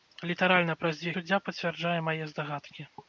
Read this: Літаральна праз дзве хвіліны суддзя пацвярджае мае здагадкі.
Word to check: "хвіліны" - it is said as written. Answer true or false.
false